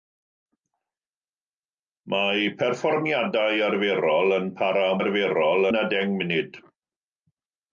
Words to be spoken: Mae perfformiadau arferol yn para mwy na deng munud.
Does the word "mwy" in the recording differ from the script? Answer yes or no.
yes